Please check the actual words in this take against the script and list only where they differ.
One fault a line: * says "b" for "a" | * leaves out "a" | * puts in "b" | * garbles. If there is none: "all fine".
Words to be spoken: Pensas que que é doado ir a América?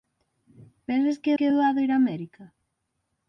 all fine